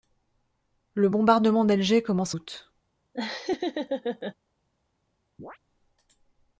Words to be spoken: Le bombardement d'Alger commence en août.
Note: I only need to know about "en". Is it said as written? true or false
false